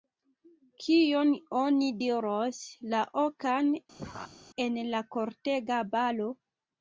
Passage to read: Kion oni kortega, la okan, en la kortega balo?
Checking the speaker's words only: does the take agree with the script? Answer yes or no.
no